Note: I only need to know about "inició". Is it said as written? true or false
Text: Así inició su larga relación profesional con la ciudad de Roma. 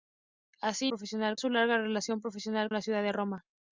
false